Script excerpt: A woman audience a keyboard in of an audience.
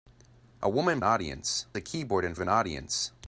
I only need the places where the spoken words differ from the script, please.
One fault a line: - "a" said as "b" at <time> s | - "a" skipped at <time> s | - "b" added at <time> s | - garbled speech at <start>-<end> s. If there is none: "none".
none